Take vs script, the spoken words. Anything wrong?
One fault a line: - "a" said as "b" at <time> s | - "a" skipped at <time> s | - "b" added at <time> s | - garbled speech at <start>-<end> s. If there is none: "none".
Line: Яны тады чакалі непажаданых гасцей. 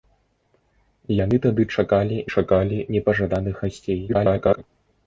- "чакалі" added at 2.4 s
- garbled speech at 4.1-4.6 s